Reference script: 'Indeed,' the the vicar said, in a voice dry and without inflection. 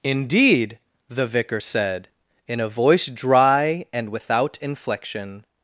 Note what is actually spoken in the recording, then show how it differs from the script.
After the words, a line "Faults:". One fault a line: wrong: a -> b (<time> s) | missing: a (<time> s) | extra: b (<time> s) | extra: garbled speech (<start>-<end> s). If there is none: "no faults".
'Indeed,' the vicar said, in a voice dry and without inflection.
Faults:
missing: the (1.3 s)